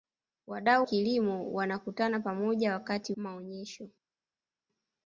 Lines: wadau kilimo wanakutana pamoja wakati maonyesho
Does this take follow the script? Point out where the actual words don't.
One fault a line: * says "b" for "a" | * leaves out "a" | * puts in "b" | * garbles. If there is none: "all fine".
all fine